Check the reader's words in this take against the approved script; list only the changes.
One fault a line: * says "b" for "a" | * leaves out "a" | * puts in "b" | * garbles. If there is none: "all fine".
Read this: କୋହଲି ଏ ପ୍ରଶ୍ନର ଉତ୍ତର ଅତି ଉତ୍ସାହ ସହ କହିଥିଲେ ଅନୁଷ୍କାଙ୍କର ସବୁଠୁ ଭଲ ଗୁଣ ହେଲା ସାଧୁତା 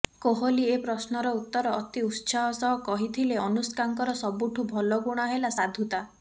all fine